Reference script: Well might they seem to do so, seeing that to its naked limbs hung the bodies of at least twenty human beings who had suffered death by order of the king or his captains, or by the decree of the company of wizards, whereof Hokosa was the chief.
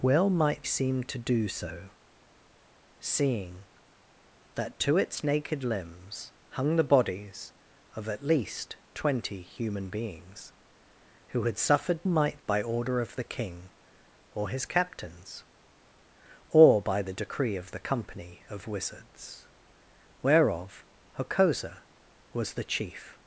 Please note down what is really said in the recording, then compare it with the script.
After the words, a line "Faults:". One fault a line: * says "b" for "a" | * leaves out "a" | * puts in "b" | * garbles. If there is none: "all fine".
Well might seem to do so, seeing that to its naked limbs hung the bodies of at least twenty human beings who had suffered might by order of the king or his captains, or by the decree of the company of wizards, whereof Hokosa was the chief.
Faults:
* leaves out "they"
* says "might" for "death"